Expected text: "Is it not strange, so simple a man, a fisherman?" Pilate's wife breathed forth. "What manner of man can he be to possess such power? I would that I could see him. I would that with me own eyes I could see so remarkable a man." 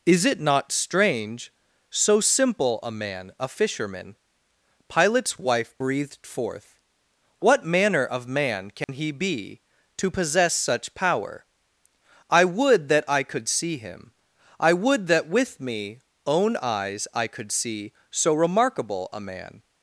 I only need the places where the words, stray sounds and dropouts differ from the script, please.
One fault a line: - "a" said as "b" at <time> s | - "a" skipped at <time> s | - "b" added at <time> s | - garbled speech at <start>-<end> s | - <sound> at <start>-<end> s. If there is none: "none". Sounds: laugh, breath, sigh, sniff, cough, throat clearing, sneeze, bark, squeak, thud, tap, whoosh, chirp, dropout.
- dropout at 8.8-8.9 s